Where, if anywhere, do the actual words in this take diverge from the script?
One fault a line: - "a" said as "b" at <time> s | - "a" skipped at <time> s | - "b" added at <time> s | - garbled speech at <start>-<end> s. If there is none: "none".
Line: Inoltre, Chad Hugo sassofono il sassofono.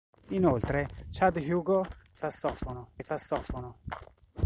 none